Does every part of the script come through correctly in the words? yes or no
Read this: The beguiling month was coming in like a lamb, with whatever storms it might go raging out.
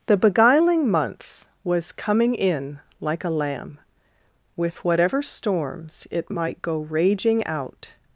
yes